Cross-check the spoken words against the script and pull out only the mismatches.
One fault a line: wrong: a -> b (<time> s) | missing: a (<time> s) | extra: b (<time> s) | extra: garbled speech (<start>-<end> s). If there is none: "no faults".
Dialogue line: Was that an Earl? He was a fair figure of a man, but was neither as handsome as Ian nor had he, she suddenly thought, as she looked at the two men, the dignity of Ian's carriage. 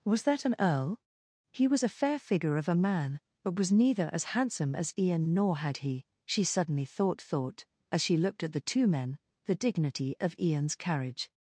extra: thought (7.2 s)